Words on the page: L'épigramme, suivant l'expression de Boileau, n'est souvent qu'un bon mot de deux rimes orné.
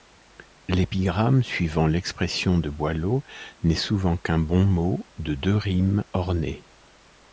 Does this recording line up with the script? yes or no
yes